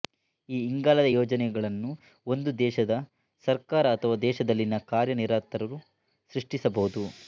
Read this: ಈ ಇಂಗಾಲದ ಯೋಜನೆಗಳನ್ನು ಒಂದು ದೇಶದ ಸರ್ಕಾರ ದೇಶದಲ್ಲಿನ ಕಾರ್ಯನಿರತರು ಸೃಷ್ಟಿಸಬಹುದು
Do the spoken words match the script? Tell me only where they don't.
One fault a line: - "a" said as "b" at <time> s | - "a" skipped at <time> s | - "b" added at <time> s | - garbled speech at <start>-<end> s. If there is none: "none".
- "ಅಥವಾ" added at 3.9 s